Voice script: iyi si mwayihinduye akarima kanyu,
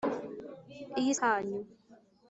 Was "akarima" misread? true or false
true